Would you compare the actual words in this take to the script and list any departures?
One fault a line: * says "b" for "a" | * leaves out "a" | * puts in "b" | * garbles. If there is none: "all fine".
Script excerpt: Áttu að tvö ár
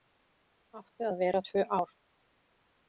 * puts in "vera"